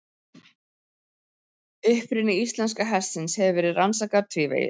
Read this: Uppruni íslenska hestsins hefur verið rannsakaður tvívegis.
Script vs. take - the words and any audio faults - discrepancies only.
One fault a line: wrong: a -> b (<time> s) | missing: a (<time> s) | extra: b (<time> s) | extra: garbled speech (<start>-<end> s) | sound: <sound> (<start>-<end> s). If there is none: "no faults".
no faults